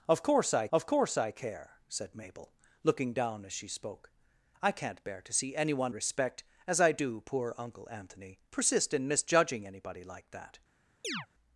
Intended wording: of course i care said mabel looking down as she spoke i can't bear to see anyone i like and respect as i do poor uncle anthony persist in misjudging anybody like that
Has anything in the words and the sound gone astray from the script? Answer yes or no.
yes